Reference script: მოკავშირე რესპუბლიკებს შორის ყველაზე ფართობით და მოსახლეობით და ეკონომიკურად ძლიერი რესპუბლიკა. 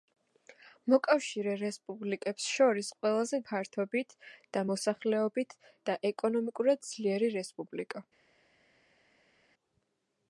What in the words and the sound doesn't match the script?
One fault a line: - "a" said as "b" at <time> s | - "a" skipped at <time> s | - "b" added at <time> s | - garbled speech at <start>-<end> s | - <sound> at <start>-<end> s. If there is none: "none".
none